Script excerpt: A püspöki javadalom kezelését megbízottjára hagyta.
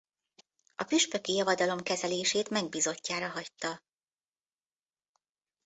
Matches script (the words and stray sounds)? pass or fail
pass